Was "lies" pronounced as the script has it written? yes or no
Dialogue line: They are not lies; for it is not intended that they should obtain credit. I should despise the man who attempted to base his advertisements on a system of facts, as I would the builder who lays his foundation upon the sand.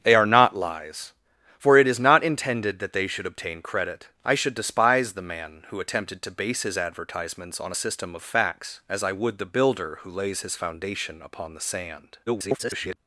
yes